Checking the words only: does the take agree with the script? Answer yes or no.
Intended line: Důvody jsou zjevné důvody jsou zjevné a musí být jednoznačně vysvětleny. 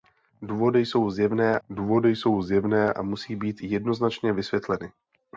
yes